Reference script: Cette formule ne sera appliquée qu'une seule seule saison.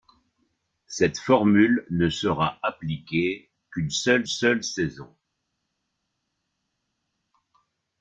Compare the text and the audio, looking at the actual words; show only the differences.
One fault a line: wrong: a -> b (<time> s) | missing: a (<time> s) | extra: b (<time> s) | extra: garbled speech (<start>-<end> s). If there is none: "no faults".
no faults